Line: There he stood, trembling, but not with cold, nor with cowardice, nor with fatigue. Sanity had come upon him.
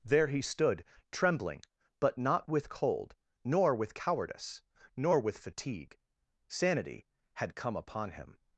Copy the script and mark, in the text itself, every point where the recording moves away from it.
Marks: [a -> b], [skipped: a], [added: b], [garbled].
There he stood, trembling, but not with cold, nor with cowardice, nor with fatigue. Sanity had come upon him.